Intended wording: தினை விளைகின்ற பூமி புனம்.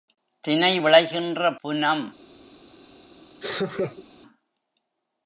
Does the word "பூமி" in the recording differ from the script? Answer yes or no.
yes